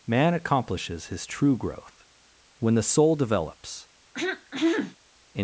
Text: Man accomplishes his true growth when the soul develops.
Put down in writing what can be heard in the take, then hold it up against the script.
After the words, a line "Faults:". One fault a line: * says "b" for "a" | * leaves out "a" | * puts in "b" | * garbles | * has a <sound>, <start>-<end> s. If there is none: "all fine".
Man accomplishes his true growth when the soul develops.
Faults:
* has a throat clearing, 4.1-5.0 s